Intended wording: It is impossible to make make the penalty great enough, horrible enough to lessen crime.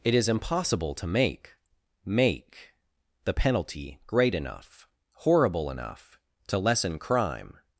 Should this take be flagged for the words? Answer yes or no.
no